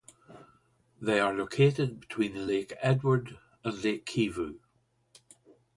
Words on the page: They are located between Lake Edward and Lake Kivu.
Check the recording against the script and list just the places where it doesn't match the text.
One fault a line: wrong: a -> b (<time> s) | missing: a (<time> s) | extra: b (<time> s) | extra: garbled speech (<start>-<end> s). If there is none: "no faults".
no faults